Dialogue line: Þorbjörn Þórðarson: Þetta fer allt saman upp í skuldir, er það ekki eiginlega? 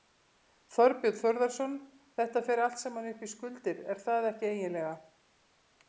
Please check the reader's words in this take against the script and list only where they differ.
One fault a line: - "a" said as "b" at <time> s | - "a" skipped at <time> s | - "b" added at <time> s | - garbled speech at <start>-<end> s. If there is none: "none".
none